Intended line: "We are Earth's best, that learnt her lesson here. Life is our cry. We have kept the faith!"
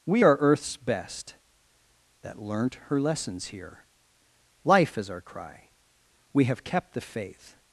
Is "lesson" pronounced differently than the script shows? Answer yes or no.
yes